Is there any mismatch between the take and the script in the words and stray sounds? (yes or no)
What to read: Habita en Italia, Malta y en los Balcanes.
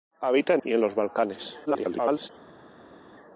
yes